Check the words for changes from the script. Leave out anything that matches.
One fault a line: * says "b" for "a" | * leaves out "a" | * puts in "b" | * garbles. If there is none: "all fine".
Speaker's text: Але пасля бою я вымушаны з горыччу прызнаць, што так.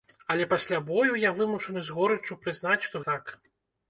all fine